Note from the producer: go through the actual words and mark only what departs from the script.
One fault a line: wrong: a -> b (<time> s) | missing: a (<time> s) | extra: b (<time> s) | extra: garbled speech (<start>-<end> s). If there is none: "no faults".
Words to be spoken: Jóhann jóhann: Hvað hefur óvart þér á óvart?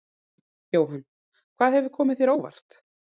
missing: jóhann (1.0 s)
wrong: óvart -> komið (2.0 s)